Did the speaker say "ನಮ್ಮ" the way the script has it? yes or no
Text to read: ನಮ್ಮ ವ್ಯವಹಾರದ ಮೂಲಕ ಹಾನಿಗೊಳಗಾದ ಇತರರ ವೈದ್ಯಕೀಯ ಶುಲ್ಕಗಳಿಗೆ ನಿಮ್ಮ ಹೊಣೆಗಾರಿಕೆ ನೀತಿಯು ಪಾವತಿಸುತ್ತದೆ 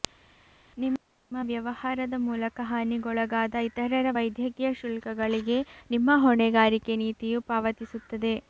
no